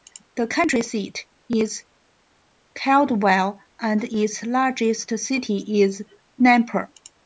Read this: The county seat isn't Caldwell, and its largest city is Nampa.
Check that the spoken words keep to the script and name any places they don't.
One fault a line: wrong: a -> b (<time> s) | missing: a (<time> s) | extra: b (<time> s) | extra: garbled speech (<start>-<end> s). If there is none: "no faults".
wrong: isn't -> is (1.5 s)